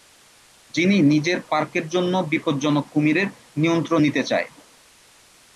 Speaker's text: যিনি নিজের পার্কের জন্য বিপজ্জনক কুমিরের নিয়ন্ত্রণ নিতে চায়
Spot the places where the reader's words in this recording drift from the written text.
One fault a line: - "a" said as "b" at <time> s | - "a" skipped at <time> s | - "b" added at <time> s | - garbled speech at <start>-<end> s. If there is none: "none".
none